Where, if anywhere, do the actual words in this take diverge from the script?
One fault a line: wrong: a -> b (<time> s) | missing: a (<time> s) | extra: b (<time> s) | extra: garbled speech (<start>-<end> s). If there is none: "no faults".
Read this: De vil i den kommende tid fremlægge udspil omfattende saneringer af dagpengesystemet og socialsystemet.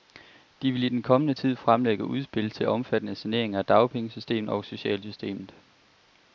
extra: til (2.5 s)